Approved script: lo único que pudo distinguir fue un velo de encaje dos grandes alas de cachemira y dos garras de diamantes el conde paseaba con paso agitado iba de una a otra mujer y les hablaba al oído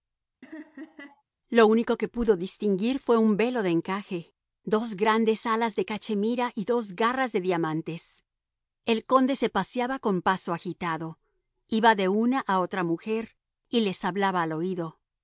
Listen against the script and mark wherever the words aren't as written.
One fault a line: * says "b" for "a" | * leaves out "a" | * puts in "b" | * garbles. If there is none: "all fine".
* puts in "se"